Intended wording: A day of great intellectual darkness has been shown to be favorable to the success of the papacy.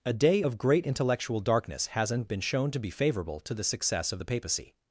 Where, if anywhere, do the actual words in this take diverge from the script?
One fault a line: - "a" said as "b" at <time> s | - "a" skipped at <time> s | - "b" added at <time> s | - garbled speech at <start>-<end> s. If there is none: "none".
- "has" said as "hasn't" at 1.9 s